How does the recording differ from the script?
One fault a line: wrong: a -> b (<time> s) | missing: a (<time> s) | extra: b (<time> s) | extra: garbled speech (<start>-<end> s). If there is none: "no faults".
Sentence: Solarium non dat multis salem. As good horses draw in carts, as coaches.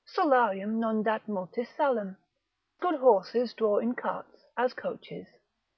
missing: As (2.2 s)